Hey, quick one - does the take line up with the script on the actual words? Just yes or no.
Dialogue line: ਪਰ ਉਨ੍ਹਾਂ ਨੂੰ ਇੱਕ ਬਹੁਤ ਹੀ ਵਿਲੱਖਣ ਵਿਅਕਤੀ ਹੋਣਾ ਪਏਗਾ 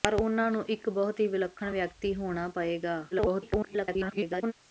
no